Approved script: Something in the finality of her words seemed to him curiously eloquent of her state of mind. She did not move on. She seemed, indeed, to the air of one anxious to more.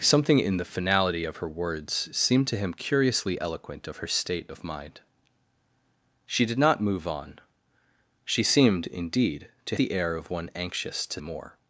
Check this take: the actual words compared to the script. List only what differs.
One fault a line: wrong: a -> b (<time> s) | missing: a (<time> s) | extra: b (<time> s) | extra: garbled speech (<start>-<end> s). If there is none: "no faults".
no faults